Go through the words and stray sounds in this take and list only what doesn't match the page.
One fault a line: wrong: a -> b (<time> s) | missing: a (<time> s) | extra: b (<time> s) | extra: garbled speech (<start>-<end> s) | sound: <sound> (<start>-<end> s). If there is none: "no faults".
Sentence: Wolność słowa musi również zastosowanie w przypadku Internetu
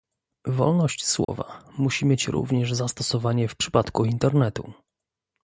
sound: dropout (1.2-1.3 s)
extra: mieć (2.0 s)